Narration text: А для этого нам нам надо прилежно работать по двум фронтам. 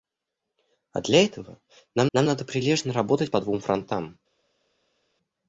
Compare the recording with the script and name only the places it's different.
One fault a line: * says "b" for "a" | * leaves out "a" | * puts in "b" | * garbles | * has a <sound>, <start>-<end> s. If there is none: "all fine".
all fine